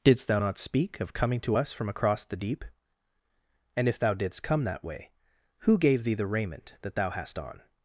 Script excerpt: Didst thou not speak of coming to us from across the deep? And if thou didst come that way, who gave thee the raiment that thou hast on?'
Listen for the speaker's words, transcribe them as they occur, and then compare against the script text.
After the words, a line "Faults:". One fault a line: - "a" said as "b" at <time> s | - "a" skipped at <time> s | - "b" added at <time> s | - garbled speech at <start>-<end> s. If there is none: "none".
Didst thou not speak of coming to us from across the deep? And if thou didst come that way, who gave thee the raiment that thou hast on?'
Faults:
none